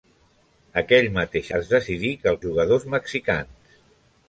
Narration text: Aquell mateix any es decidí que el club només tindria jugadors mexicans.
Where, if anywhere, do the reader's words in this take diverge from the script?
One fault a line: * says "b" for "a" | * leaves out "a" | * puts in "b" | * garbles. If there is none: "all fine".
* leaves out "any"
* leaves out "club només tindria"